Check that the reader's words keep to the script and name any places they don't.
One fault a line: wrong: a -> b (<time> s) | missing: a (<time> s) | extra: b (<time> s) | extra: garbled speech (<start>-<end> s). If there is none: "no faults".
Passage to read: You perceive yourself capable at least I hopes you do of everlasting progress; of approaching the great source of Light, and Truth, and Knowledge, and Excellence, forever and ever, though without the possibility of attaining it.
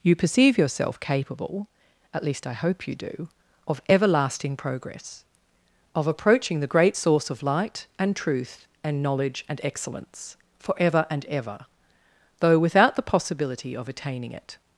wrong: hopes -> hope (2.5 s)